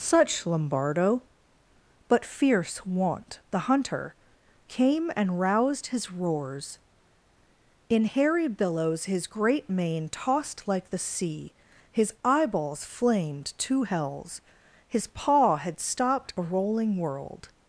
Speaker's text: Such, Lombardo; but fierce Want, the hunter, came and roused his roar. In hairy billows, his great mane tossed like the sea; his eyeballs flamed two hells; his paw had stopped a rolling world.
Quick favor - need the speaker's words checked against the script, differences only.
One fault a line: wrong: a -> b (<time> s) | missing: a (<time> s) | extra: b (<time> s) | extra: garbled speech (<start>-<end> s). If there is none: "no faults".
wrong: roar -> roars (6.1 s)